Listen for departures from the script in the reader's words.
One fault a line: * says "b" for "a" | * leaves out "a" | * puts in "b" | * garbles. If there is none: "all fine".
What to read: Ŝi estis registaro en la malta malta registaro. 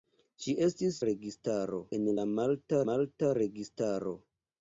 all fine